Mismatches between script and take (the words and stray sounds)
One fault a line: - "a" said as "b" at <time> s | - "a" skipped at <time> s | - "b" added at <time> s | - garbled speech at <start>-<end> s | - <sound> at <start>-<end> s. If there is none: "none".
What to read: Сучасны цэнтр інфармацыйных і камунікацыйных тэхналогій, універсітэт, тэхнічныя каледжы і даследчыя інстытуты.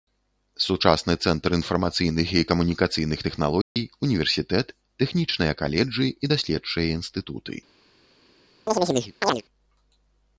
- dropout at 3.6-3.8 s
- chirp at 8.7-9.4 s